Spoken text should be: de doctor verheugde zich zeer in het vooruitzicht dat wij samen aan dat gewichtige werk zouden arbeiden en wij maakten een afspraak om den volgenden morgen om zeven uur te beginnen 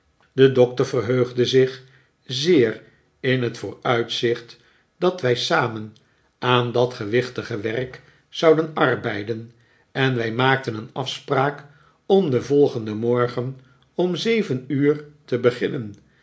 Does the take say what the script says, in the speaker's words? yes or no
yes